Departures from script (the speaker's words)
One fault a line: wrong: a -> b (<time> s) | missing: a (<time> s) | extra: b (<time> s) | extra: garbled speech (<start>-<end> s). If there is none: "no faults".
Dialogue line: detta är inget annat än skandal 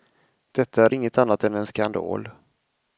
extra: en (1.5 s)